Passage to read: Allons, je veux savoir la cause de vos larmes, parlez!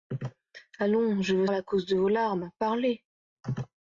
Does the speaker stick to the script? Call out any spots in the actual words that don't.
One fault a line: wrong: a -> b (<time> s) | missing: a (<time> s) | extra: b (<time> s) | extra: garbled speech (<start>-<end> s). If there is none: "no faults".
missing: savoir (1.4 s)